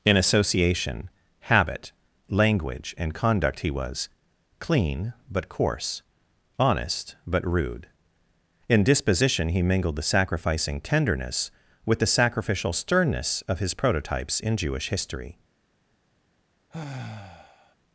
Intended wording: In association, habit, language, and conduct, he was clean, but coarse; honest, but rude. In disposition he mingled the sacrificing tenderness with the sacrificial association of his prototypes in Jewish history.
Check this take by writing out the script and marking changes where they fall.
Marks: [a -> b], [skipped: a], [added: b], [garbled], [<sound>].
In association, habit, language, and conduct, he was clean, but coarse; honest, but rude. In disposition he mingled the sacrificing tenderness with the sacrificial [association -> sternness] of his prototypes in Jewish history. [sigh]